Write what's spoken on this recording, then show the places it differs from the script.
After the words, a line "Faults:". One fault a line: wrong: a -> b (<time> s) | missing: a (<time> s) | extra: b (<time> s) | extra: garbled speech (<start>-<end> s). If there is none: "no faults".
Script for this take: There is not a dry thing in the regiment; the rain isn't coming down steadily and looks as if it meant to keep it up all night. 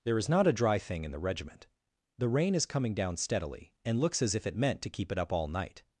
There is not a dry thing in the regiment; the rain is coming down steadily and looks as if it meant to keep it up all night.
Faults:
wrong: isn't -> is (2.5 s)